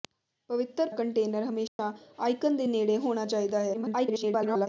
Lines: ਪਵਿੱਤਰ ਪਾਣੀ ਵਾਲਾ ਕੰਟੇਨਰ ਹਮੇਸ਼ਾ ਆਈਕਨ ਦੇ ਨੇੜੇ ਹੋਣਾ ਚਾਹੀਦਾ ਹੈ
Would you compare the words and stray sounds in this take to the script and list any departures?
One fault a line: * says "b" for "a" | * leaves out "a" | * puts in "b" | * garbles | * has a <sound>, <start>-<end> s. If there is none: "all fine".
* leaves out "ਪਾਣੀ ਵਾਲਾ"
* has a dropout, 1.7-1.8 s
* garbles